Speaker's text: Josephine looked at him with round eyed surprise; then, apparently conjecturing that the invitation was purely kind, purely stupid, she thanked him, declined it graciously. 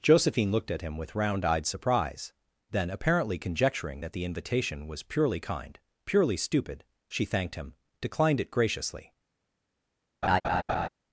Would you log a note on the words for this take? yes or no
no